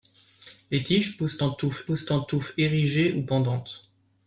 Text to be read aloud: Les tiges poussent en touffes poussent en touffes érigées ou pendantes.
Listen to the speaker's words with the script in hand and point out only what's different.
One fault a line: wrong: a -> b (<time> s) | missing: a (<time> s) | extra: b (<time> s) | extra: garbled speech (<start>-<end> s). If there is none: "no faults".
no faults